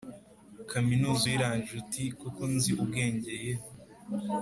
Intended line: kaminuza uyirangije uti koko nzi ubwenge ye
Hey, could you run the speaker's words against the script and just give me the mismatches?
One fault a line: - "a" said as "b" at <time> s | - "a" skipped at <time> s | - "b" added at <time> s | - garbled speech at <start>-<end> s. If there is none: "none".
none